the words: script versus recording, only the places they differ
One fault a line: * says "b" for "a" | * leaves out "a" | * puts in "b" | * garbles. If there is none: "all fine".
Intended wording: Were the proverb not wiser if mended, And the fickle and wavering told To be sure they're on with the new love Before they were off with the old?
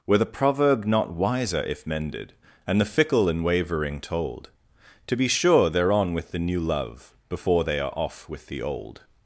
* says "are" for "were"